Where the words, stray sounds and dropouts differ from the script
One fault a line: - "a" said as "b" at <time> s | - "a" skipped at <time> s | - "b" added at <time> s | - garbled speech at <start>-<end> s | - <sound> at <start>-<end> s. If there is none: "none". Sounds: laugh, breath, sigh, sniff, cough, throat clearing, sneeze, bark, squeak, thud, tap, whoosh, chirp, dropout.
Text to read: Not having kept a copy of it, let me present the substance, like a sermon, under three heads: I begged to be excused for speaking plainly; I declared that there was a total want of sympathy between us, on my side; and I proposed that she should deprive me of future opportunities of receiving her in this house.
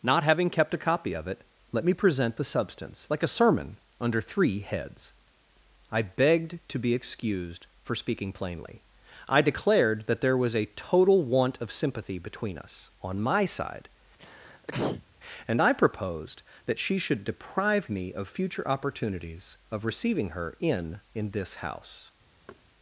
- sneeze at 14.2-15.1 s
- "in" added at 21.1 s
- thud at 22.5-22.6 s